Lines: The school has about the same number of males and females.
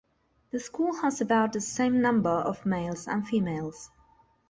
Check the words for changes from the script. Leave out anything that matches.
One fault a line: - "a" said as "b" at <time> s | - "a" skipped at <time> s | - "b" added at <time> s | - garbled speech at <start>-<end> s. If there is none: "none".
none